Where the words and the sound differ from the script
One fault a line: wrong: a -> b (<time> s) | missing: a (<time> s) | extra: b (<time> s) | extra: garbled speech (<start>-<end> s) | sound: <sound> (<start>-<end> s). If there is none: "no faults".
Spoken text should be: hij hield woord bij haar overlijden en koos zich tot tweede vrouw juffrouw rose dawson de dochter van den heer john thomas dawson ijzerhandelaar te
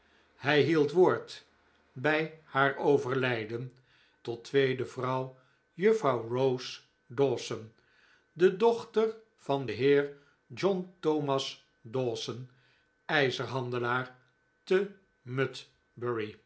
missing: en koos zich (3.7 s)